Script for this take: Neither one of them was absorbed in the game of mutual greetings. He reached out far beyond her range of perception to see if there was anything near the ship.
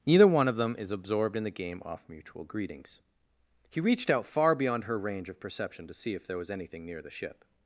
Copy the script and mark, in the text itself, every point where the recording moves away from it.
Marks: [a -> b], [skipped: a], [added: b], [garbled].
Neither one of them [was -> is] absorbed in the game [of -> off] mutual greetings. He reached out far beyond her range of perception to see if there was anything near the ship.